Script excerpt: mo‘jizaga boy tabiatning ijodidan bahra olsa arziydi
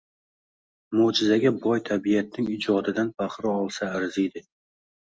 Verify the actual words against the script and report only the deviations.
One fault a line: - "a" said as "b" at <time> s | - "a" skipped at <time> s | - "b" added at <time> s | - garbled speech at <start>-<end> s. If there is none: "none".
none